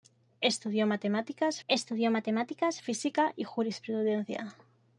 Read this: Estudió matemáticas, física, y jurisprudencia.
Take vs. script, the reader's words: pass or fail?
fail